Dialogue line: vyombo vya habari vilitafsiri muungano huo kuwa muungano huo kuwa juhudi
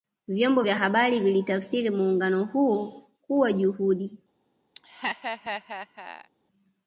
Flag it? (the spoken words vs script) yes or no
yes